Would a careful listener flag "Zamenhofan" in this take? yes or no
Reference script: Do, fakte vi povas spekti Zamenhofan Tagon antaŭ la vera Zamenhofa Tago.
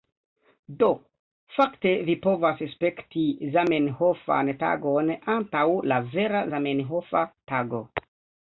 no